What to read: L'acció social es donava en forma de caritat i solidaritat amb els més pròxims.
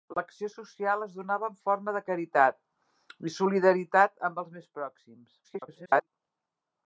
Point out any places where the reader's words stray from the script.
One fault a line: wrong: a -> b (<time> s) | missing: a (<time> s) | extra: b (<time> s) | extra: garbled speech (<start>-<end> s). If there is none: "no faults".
extra: garbled speech (5.4-6.1 s)